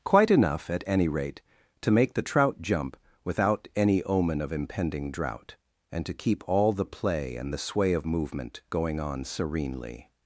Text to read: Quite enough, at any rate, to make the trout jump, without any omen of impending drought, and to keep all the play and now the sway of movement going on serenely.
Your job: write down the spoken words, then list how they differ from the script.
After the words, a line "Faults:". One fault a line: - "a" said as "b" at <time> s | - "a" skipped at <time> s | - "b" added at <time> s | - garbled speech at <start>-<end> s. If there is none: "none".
Quite enough, at any rate, to make the trout jump, without any omen of impending drought, and to keep all the play and the sway of movement going on serenely.
Faults:
- "now" skipped at 7.5 s